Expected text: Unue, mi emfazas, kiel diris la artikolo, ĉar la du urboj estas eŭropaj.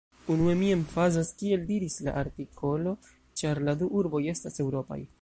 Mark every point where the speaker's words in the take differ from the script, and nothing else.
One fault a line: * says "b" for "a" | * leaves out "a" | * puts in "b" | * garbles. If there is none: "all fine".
all fine